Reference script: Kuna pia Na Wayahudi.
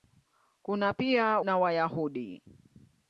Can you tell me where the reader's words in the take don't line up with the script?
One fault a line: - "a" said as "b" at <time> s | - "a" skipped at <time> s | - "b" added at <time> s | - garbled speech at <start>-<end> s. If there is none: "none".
none